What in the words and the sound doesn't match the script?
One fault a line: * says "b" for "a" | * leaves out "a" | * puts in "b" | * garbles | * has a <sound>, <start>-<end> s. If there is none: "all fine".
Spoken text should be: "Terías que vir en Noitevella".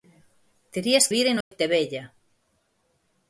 * leaves out "que"
* has a dropout, 1.4-1.5 s